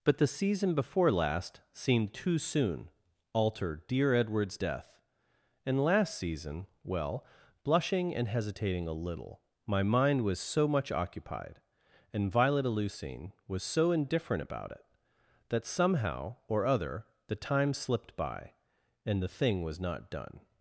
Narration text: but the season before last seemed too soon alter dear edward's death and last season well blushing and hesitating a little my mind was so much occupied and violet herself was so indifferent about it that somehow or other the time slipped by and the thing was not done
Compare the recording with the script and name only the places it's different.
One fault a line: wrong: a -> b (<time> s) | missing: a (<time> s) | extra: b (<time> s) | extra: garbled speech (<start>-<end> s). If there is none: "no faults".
wrong: herself -> eleusine (12.7 s)